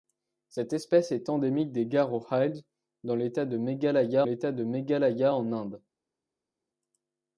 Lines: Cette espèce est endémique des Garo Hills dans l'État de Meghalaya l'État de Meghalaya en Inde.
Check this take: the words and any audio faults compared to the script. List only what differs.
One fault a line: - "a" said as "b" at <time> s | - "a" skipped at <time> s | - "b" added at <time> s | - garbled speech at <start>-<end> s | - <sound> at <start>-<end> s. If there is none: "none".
none